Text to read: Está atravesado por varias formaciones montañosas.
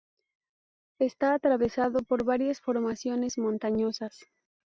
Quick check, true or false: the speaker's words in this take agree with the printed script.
true